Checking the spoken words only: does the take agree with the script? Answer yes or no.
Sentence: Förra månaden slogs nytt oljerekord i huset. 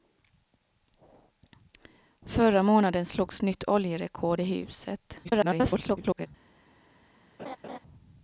no